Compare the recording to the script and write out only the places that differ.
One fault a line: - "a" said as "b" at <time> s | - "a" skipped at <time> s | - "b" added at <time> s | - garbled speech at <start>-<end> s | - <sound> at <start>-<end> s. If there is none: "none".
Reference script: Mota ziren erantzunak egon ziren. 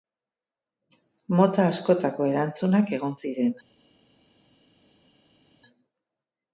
- "ziren" said as "askotako" at 1.7 s